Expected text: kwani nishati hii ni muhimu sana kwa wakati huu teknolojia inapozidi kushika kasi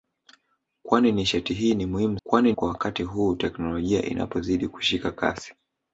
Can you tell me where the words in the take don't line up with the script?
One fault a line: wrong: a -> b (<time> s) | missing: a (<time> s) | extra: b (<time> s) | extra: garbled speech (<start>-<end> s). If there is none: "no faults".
wrong: sana -> kwani (2.2 s)